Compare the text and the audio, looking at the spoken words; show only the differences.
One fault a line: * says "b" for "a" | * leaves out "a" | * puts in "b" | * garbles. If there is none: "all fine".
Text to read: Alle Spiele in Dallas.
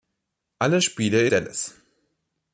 * leaves out "in"